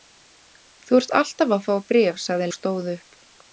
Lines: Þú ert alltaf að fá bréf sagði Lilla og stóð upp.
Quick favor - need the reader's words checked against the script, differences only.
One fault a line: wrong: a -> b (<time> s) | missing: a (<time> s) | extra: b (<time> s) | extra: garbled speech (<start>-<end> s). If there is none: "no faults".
missing: Lilla (2.5 s)